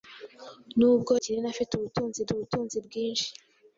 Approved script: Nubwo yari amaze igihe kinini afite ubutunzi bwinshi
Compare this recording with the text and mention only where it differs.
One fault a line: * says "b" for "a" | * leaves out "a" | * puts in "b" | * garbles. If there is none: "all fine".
* leaves out "yari amaze igihe"
* puts in "ubutunzi"